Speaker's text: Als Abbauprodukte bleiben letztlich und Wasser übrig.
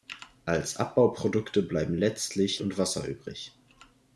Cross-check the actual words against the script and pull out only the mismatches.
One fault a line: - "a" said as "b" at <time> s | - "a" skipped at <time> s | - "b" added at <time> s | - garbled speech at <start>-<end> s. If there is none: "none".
none